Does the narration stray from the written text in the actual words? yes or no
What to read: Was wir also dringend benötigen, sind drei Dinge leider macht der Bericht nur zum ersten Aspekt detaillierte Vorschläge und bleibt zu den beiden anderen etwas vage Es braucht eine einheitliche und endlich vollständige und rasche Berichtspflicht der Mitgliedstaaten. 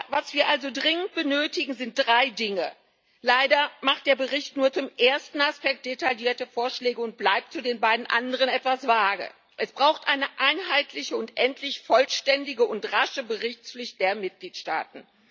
no